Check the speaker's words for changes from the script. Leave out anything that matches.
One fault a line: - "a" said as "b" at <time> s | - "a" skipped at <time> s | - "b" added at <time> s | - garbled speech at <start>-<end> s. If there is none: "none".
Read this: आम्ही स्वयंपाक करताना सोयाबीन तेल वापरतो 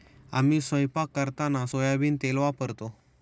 none